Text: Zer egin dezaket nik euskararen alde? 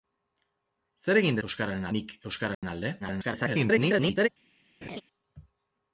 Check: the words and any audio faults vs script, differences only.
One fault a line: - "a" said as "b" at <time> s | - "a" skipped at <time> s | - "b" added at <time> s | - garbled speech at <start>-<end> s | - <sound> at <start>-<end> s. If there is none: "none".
- "dezaket" said as "euskararen" at 1.5 s
- dropout at 2.5-2.6 s
- garbled speech at 3.0-4.3 s
- laugh at 4.8-5.0 s